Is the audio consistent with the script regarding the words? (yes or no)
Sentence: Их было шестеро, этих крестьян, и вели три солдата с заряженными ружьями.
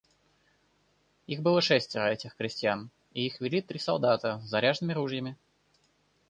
no